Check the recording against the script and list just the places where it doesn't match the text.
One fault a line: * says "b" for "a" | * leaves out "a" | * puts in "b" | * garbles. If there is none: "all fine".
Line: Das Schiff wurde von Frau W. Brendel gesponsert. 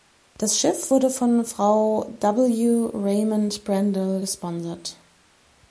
* puts in "Raymond"